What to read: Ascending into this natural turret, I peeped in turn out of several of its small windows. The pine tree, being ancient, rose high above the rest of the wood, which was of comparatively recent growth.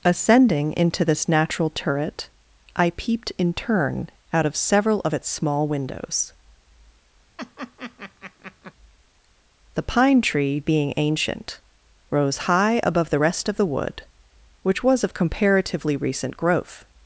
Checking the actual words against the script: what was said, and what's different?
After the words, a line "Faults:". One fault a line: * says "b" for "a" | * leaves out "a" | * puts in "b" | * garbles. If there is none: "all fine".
Ascending into this natural turret, I peeped in turn out of several of its small windows. The pine tree, being ancient, rose high above the rest of the wood, which was of comparatively recent growth.
Faults:
all fine